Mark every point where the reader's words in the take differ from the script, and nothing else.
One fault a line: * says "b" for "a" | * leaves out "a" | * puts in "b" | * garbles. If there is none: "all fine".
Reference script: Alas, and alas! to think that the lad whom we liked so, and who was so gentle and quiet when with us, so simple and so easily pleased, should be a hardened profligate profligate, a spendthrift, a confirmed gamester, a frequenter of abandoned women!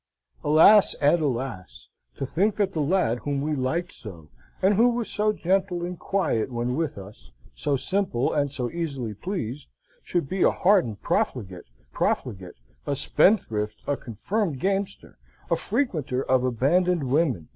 all fine